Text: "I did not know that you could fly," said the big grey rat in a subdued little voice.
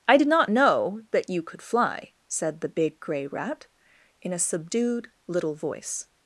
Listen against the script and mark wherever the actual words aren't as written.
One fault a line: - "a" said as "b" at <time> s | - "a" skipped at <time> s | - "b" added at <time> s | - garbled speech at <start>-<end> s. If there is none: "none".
none